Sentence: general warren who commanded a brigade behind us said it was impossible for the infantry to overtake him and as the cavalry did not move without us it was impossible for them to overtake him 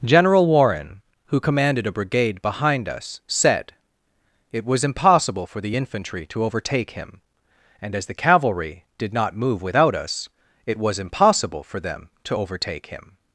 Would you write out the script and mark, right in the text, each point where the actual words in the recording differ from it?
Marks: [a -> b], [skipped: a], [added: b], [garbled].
general warren who commanded a brigade behind us said it was impossible for the infantry to overtake him and as the cavalry did not move without us it was impossible for them to overtake him